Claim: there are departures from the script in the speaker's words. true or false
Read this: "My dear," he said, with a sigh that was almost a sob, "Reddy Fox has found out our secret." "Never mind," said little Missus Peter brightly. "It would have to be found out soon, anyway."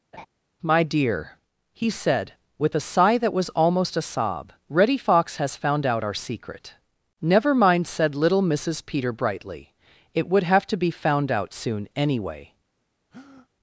false